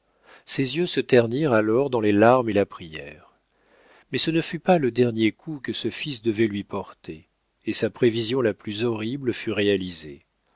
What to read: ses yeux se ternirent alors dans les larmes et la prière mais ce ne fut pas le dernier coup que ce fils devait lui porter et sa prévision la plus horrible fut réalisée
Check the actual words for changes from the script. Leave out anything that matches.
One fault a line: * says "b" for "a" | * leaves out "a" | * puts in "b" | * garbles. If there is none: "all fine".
all fine